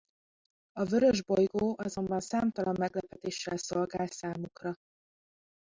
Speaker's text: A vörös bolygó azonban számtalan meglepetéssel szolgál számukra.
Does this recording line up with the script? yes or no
yes